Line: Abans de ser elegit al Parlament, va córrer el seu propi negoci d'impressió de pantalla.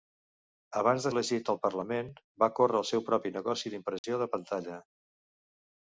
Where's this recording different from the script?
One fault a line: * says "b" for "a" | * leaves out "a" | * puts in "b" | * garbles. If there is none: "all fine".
* leaves out "ser"